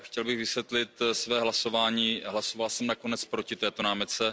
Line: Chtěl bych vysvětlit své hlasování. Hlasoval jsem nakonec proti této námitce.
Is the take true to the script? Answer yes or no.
yes